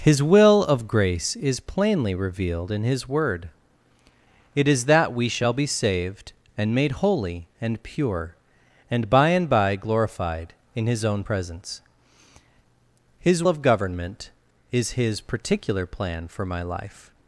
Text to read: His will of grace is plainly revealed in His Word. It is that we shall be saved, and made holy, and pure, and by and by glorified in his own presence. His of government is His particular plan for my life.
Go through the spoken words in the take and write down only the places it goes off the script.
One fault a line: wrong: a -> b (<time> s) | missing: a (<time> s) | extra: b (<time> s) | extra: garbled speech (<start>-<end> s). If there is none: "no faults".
no faults